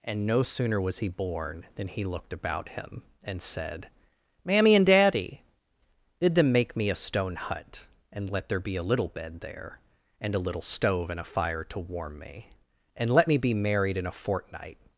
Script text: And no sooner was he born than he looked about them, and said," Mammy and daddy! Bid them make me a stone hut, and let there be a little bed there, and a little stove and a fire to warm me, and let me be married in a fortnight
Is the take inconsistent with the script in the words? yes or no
yes